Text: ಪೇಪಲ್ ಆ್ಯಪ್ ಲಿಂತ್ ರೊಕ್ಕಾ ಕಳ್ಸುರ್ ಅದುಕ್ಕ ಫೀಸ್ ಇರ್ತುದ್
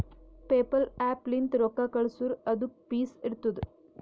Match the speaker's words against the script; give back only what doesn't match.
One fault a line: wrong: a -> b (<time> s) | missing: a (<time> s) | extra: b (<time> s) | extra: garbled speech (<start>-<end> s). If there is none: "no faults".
no faults